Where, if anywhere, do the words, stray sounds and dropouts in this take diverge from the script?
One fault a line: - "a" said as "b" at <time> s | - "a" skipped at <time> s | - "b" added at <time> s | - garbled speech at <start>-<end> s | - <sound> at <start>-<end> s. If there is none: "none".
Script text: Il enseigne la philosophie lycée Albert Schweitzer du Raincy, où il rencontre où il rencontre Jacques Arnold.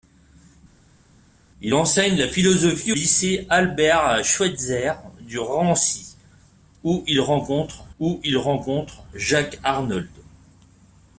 none